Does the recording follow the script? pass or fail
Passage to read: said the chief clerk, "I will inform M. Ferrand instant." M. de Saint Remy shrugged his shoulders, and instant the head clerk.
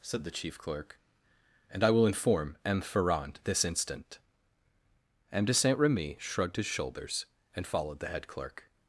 fail